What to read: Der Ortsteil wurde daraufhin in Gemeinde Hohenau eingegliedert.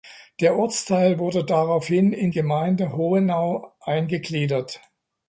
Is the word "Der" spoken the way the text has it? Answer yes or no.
yes